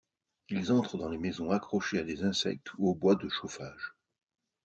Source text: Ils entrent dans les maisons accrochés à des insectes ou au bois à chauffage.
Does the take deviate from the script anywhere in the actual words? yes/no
yes